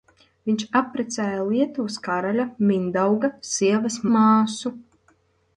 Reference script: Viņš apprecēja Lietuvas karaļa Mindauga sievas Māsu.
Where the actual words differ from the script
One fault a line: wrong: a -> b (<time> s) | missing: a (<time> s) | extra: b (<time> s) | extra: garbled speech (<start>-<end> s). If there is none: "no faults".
no faults